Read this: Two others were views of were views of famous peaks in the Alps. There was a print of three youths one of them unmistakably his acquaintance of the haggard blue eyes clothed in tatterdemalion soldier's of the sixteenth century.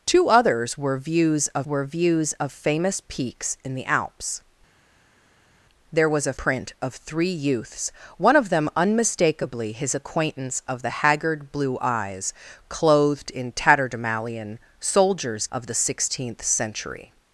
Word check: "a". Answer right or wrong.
right